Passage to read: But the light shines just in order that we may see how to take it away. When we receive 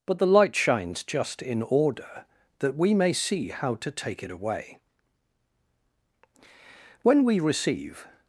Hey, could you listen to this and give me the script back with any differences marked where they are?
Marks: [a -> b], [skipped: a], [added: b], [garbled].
But the light shines just in order that we may see how to take it away. When we receive